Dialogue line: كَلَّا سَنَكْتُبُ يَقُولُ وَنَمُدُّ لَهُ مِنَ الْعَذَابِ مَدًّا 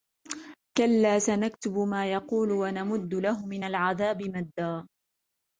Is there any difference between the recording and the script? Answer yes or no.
yes